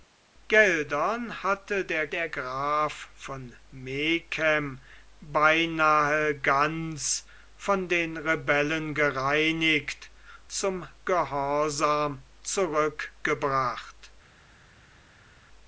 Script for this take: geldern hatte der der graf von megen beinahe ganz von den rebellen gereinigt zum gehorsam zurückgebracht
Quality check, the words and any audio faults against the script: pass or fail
pass